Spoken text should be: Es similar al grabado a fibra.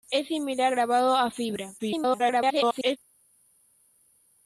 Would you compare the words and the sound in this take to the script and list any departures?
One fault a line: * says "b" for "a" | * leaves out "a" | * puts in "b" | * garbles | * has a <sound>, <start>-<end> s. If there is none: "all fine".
* leaves out "al"
* garbles